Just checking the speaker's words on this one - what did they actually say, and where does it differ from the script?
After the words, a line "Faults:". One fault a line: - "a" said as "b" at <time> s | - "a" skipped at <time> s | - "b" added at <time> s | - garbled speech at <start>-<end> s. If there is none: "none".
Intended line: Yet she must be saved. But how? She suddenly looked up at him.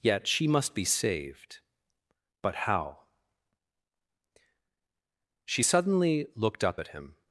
Yet she must be saved. But how? She suddenly looked up at him.
Faults:
none